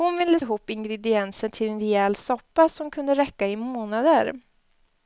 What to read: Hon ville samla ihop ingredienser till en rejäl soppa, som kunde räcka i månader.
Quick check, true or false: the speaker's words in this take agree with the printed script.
false